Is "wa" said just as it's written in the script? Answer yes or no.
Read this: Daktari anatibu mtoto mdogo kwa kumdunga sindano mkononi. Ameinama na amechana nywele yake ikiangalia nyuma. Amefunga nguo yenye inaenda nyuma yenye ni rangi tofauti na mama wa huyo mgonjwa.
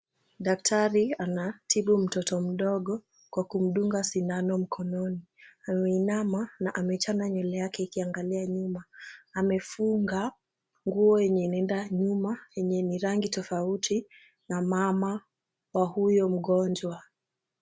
yes